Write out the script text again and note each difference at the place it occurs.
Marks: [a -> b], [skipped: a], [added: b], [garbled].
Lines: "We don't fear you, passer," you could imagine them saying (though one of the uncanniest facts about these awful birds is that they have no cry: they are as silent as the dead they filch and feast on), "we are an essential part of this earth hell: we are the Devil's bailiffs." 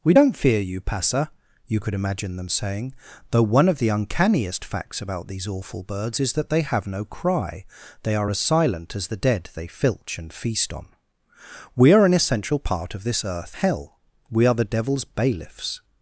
"We don't fear you, passer," you could imagine them saying (though one of the uncanniest facts about these awful birds is that they have no cry: they are as silent as the dead they filch and feast on), "we are an essential part of this earth hell: we are the Devil's bailiffs."